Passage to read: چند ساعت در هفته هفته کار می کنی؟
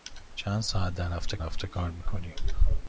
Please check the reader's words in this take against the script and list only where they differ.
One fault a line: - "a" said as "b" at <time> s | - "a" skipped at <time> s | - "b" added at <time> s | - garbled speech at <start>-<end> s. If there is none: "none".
none